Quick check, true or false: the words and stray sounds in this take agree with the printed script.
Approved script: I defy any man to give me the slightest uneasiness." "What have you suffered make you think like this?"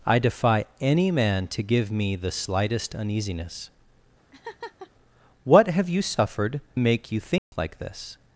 false